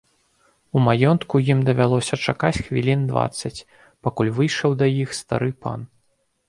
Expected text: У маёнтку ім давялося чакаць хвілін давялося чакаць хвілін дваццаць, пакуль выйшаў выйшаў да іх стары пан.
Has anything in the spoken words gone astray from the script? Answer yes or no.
yes